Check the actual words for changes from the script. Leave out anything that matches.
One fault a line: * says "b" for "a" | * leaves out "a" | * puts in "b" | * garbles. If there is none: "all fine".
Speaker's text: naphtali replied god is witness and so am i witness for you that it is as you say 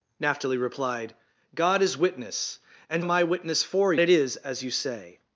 * leaves out "so"
* leaves out "you that"